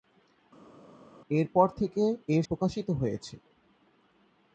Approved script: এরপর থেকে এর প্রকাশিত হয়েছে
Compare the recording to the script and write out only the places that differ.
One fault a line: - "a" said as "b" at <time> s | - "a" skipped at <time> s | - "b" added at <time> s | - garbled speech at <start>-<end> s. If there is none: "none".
none